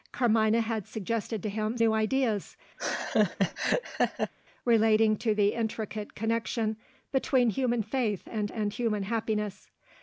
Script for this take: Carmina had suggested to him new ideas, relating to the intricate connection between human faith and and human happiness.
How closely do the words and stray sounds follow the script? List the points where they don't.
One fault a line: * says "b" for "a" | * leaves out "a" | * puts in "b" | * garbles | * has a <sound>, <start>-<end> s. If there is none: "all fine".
* has a laugh, 2.8-4.3 s